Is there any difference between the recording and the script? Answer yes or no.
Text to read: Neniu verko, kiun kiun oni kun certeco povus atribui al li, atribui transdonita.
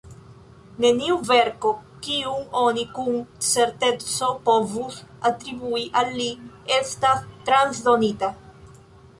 yes